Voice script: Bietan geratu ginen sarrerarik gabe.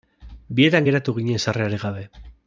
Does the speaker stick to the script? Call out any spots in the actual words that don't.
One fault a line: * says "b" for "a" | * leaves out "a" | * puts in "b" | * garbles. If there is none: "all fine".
all fine